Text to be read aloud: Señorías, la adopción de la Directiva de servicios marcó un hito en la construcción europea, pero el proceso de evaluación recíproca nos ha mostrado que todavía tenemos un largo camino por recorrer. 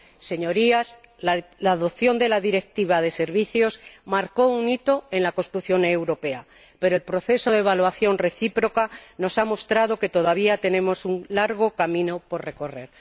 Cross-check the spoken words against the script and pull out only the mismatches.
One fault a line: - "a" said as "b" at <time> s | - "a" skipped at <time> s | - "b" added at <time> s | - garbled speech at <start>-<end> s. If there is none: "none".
none